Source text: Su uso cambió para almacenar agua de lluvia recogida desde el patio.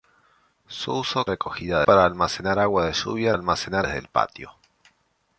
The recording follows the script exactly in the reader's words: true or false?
false